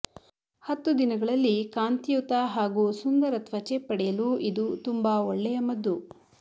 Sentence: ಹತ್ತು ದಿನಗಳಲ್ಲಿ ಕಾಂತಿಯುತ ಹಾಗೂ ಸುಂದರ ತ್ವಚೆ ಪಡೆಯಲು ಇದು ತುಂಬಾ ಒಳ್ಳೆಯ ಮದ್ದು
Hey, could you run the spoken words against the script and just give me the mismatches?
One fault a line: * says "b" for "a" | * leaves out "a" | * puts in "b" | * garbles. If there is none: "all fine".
all fine